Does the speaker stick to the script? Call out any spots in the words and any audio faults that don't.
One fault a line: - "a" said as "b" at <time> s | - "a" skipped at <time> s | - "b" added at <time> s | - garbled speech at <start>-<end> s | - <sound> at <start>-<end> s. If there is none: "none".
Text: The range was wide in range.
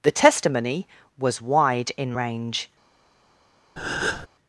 - "range" said as "testimony" at 0.1 s
- breath at 3.8-4.3 s